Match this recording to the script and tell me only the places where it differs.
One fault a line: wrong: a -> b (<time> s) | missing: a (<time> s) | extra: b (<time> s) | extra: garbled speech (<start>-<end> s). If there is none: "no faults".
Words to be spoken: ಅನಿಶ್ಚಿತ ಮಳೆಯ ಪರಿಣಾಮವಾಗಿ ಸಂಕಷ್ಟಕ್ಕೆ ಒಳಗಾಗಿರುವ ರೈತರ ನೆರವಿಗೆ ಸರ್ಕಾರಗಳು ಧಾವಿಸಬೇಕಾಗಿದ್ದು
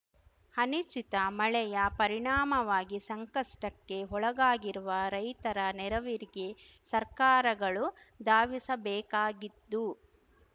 no faults